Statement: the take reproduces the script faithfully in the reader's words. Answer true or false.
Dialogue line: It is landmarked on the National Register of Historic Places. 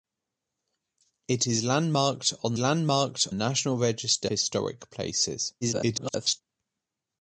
false